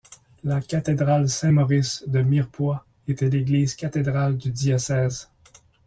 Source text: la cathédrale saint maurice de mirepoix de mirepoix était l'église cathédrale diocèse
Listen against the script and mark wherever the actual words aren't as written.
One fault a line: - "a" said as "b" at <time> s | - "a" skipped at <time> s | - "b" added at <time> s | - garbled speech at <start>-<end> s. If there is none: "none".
- "de mirepoix" skipped at 2.8 s
- "du" added at 4.4 s